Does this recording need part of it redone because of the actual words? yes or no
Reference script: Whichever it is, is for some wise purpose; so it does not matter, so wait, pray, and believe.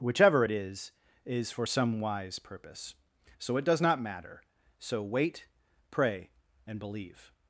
no